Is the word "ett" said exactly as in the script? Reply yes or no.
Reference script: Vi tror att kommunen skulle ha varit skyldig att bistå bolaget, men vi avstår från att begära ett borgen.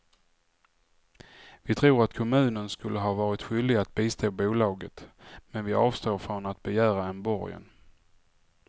no